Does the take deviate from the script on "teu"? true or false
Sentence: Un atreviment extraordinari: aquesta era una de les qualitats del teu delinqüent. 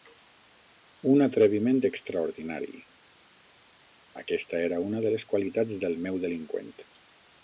true